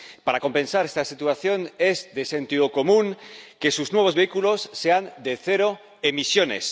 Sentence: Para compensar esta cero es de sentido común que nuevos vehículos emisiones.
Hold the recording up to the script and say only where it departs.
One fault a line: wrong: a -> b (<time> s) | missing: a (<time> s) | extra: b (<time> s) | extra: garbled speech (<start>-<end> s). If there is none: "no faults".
wrong: cero -> situación (1.1 s)
extra: sus (3.7 s)
extra: sean de cero (4.7 s)